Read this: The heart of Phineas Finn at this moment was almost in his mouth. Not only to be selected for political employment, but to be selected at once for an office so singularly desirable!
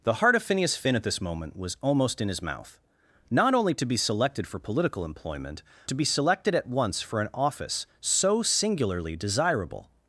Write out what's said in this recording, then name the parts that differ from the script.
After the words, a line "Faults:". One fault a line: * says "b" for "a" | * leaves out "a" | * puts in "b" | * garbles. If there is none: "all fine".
The heart of Phineas Finn at this moment was almost in his mouth. Not only to be selected for political employment, to be selected at once for an office so singularly desirable!
Faults:
* leaves out "but"